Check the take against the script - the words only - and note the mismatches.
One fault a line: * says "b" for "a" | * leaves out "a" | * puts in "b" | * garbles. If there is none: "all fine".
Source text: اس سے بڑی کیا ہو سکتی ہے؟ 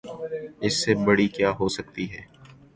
all fine